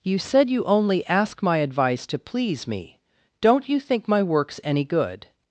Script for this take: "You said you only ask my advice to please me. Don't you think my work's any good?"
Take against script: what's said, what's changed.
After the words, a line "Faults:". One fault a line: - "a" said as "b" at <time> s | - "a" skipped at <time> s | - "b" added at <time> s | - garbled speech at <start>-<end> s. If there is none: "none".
"You said you only ask my advice to please me. Don't you think my work's any good?"
Faults:
none